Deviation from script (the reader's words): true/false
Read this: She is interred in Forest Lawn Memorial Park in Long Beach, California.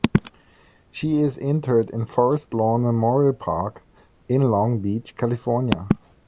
false